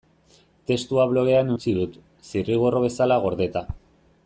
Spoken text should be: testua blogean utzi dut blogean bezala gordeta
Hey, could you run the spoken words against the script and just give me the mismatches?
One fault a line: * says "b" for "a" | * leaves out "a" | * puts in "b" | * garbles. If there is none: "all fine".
* says "zirriborro" for "blogean"